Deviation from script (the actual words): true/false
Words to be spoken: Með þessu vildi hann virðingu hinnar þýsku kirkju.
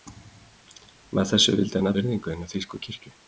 false